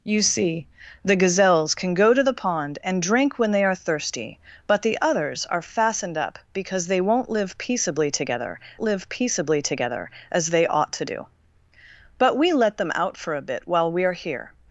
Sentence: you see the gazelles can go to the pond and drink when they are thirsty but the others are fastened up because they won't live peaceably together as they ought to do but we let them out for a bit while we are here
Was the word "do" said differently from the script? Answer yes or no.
no